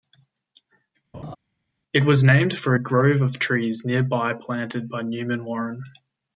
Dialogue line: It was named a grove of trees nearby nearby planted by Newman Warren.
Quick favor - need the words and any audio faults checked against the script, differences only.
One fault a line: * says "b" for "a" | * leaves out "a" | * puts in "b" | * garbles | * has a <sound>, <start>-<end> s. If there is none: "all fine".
* has a laugh, 1.1-1.4 s
* puts in "for"
* leaves out "nearby"